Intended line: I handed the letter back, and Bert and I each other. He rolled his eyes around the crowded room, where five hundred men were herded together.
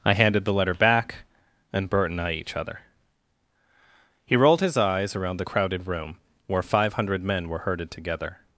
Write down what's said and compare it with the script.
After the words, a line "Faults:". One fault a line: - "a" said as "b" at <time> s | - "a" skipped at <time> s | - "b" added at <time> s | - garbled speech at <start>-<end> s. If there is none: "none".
I handed the letter back, and Bert and I each other. He rolled his eyes around the crowded room, where five hundred men were herded together.
Faults:
none